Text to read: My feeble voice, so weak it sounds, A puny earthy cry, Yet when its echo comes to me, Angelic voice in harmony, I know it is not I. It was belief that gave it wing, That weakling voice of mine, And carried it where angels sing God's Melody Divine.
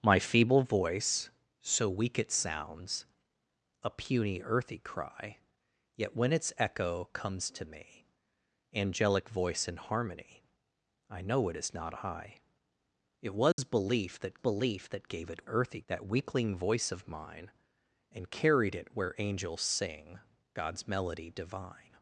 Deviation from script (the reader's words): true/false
true